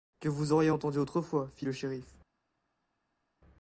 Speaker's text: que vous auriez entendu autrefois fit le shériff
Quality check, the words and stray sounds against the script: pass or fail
pass